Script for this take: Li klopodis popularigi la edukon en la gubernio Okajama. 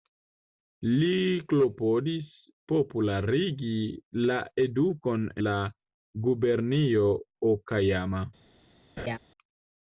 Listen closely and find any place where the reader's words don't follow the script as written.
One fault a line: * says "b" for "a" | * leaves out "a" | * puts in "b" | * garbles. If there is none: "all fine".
* leaves out "en"